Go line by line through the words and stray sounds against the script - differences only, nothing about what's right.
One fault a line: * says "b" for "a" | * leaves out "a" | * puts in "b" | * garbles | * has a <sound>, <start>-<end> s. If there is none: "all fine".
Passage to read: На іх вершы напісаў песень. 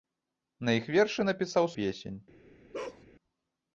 * has a bark, 2.7-3.0 s